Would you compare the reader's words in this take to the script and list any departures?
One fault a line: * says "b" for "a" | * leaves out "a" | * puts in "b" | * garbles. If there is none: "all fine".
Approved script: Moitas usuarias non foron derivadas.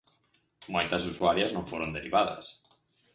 all fine